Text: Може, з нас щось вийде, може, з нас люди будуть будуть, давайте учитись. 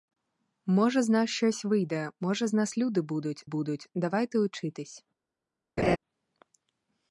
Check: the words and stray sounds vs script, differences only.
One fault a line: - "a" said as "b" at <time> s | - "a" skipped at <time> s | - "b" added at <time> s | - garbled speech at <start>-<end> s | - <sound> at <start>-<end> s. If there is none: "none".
- laugh at 5.8-6.0 s